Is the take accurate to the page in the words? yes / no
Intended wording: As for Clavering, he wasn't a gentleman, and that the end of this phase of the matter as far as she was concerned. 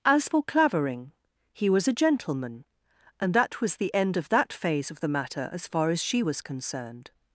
no